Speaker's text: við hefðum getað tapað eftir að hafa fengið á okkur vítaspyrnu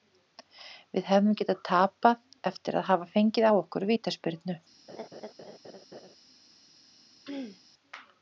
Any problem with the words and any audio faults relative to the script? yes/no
yes